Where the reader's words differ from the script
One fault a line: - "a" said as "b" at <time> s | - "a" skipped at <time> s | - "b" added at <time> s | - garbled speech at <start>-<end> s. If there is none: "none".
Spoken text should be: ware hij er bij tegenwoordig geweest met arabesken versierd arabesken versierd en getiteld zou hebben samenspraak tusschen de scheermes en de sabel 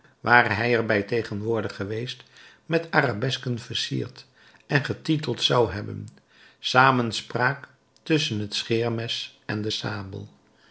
- "arabesken versierd" skipped at 4.2 s
- "de" said as "het" at 8.4 s